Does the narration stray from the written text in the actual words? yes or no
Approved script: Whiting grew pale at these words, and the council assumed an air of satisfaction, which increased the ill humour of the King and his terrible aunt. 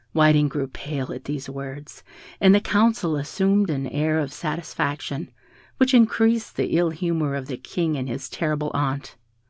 no